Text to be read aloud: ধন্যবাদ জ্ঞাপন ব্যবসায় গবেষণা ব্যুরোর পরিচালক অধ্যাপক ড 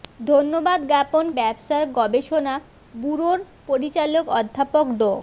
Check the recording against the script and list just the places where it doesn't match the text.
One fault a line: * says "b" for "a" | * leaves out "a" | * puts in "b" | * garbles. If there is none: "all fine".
all fine